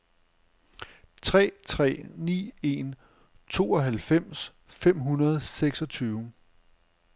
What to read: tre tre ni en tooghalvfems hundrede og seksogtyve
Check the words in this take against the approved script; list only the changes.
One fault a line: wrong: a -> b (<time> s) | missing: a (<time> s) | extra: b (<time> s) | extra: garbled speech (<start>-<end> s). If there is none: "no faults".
extra: fem (4.7 s)